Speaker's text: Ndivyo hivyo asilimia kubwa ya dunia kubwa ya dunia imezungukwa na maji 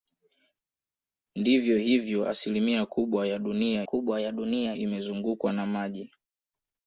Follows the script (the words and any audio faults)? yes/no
yes